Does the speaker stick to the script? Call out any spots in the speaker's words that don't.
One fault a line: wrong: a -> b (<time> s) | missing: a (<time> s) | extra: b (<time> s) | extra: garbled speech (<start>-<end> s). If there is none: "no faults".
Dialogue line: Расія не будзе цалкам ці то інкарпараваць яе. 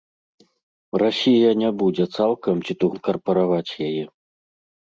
no faults